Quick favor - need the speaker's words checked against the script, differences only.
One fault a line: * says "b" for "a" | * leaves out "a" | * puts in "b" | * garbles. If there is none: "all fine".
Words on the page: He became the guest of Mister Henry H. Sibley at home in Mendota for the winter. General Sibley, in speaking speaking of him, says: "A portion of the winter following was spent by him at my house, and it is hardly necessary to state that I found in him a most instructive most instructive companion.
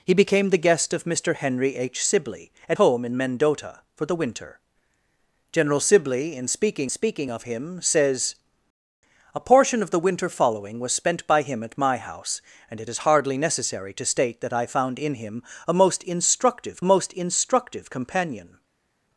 all fine